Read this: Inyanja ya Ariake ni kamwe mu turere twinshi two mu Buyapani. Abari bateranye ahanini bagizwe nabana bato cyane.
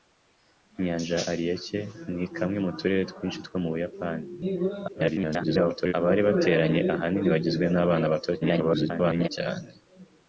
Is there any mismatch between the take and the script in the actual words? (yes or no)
yes